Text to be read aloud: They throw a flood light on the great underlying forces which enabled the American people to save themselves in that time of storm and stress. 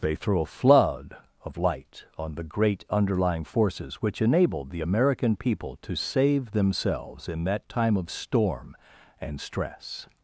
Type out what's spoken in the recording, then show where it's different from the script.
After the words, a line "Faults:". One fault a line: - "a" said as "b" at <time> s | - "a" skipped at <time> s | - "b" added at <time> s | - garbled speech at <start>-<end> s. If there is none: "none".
They throw a flood of light on the great underlying forces which enabled the American people to save themselves in that time of storm and stress.
Faults:
- "of" added at 1.4 s